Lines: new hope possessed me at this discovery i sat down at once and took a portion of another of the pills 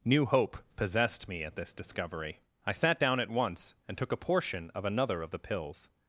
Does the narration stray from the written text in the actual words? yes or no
no